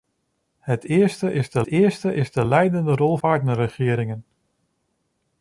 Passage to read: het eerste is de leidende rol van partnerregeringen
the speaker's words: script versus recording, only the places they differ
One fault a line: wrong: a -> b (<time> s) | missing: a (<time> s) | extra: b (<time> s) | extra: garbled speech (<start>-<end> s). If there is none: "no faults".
extra: eerste is de (1.7 s)
missing: van (3.2 s)